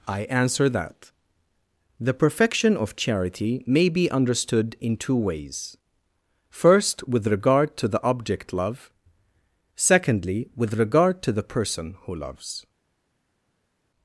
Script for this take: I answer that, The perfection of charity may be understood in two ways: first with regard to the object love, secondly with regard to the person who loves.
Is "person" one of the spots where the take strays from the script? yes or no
no